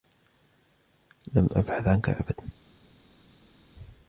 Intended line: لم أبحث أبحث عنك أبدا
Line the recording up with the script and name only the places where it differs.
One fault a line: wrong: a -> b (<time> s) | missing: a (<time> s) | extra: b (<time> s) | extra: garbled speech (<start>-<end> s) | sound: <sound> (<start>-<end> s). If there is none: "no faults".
missing: أبحث (1.9 s)